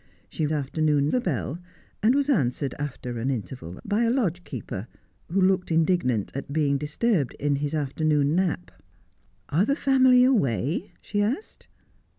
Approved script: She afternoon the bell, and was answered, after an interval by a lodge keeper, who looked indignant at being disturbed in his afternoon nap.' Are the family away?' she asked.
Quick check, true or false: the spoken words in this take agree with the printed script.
true